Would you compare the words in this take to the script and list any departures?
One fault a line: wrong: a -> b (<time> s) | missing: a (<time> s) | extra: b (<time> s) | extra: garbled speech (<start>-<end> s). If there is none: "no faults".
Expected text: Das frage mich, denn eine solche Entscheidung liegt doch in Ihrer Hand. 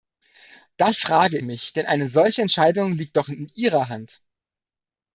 no faults